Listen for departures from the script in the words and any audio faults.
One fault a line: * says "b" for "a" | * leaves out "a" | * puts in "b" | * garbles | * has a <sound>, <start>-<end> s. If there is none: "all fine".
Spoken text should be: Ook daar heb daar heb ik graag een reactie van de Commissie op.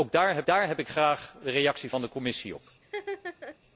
* has a laugh, 2.8-3.6 s